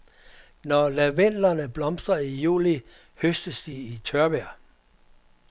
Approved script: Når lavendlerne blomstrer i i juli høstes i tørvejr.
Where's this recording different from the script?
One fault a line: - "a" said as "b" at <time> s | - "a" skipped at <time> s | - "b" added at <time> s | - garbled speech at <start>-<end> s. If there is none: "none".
- "i" skipped at 2.4 s
- "de" added at 3.6 s